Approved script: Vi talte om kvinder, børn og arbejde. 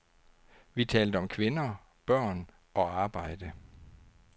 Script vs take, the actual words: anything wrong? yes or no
no